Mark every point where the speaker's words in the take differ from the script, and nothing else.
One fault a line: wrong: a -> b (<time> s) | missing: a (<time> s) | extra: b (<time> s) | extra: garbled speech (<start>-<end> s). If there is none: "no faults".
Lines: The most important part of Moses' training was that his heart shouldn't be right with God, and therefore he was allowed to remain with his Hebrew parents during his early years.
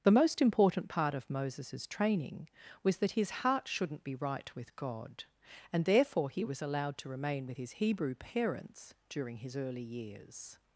no faults